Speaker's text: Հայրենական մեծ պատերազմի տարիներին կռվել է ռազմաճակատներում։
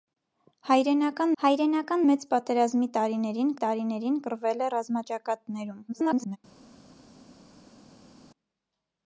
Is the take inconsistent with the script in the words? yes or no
yes